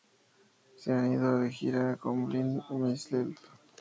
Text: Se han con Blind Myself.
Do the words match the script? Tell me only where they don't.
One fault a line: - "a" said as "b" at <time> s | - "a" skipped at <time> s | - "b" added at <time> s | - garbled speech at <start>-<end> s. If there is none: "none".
- "ido de gira" added at 1.1 s